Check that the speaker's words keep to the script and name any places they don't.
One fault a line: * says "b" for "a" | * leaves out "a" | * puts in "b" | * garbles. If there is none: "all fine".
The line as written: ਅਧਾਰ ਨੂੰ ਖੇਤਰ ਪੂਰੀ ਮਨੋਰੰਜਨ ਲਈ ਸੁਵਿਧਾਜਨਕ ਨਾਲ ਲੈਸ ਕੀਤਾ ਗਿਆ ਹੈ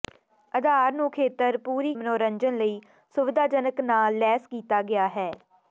all fine